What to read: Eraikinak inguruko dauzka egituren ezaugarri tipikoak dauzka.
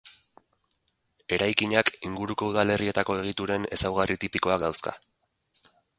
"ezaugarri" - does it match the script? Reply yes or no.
yes